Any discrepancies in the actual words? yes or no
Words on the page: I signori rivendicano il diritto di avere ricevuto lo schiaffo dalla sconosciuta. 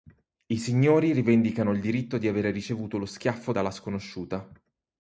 no